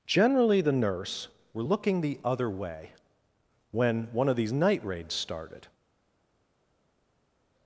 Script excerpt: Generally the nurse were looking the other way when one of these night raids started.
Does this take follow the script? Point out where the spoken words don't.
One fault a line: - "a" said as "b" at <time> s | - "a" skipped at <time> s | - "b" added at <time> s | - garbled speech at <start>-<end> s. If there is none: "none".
none